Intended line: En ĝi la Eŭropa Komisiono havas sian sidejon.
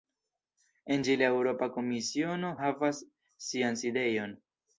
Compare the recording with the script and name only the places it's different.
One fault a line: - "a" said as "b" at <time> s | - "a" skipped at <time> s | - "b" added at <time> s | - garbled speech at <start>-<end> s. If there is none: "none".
none